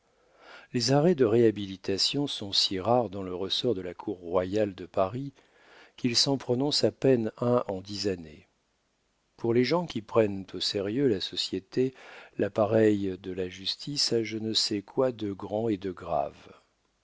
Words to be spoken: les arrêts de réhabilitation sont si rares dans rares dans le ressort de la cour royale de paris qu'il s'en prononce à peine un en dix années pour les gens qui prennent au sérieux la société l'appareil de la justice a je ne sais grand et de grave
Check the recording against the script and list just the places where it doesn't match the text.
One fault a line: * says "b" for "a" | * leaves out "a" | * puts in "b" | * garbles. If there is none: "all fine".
* leaves out "rares dans"
* puts in "quoi de"